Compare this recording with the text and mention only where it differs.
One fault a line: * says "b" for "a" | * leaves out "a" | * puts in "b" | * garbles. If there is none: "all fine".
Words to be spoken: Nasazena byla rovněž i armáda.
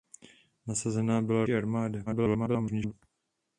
* leaves out "rovněž"
* garbles